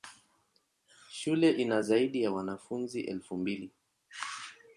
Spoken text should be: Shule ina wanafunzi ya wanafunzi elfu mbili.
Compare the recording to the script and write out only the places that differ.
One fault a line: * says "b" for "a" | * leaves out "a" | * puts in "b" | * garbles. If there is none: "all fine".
* says "zaidi" for "wanafunzi"